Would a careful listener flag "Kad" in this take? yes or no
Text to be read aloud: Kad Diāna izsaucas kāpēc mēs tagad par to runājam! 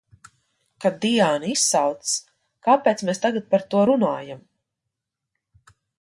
no